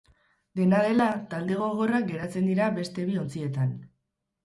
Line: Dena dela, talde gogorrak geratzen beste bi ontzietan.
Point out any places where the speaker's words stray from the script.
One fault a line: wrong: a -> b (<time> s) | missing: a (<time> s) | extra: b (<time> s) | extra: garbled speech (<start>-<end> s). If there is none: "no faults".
extra: dira (2.5 s)